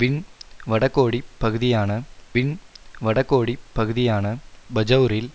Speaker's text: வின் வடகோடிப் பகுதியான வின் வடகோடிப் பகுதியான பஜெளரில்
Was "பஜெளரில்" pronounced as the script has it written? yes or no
yes